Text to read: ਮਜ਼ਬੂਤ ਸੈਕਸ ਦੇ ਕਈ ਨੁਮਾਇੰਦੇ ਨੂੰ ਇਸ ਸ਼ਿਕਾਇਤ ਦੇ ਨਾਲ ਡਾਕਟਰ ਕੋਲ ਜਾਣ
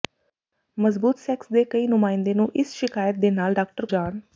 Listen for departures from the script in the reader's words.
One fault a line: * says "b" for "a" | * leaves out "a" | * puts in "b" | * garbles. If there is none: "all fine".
* leaves out "ਕੋਲ"